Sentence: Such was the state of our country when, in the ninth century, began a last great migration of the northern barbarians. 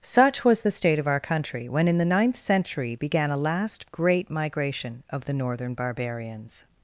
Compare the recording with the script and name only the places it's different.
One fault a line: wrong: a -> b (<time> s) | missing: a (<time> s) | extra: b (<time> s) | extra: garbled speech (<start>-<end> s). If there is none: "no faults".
no faults